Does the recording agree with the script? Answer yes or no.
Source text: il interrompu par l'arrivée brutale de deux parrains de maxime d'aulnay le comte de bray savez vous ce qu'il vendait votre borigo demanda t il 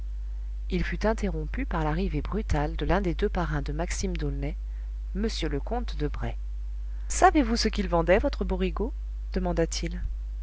no